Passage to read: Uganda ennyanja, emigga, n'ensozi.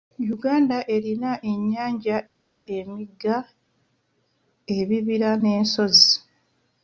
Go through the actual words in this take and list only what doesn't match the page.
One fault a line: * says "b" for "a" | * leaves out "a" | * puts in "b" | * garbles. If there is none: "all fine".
* puts in "erina"
* puts in "ebibira"